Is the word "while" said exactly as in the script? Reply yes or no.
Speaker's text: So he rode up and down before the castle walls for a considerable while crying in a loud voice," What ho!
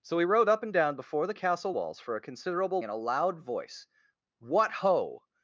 no